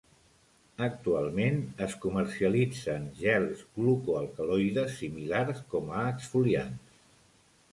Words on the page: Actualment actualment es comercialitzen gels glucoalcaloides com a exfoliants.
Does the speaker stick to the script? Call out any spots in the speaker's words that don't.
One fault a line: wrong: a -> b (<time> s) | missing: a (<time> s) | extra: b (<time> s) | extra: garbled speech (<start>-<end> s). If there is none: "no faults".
missing: actualment (1.6 s)
extra: similars (5.0 s)